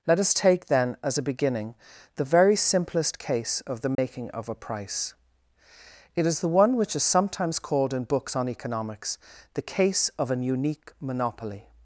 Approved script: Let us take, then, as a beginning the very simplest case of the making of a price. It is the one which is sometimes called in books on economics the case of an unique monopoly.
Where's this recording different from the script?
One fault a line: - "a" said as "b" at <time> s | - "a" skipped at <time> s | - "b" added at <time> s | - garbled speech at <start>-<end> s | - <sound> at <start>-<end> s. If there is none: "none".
- dropout at 3.9-4.0 s